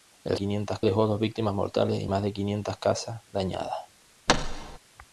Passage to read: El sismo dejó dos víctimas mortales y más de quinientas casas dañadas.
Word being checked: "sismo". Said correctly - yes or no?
no